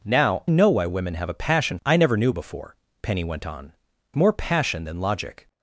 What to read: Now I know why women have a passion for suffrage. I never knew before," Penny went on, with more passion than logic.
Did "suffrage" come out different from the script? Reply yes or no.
yes